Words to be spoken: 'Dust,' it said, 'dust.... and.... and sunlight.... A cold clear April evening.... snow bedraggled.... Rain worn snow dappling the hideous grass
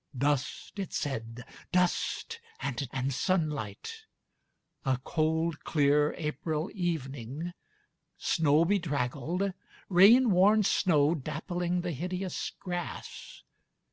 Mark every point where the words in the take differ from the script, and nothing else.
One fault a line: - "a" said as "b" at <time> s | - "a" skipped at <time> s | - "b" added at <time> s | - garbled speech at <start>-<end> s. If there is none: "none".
none